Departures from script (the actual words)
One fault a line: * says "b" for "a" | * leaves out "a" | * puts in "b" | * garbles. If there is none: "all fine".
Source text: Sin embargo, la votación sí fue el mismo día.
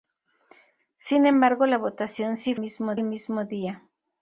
* says "mismo" for "fue"